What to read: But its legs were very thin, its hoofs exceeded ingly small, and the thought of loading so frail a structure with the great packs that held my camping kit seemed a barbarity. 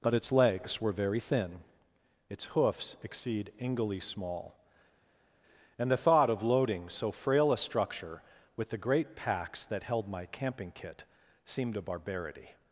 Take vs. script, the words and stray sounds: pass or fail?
fail